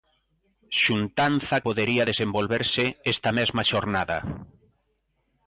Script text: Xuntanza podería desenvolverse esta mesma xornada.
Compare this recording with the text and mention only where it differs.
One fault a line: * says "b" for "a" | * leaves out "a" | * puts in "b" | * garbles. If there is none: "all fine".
all fine